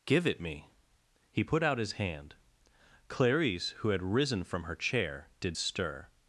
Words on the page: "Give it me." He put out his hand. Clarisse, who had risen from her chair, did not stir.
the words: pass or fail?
fail